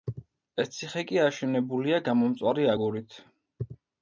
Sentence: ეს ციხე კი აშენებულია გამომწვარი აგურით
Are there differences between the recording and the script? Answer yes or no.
no